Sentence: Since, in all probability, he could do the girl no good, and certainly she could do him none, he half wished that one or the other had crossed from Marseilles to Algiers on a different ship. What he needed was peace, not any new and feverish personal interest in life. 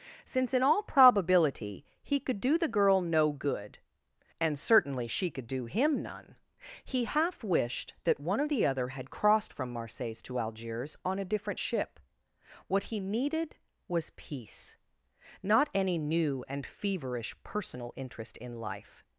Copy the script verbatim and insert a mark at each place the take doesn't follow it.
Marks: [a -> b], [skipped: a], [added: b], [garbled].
Since, in all probability, he could do the girl no good, and certainly she could do him none, he half wished that one or the other had crossed from Marseilles to Algiers on a different ship. What he needed was peace, not any new and feverish personal interest in life.